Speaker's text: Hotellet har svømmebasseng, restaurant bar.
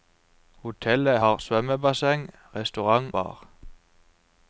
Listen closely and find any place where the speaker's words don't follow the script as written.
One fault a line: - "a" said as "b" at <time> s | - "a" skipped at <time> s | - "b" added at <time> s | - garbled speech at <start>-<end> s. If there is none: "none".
none